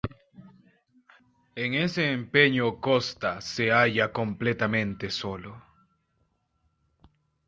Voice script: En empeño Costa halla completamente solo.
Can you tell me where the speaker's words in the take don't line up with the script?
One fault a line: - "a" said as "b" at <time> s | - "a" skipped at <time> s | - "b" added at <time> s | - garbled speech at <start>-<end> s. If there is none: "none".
- "ese" added at 1.8 s
- "se" added at 3.4 s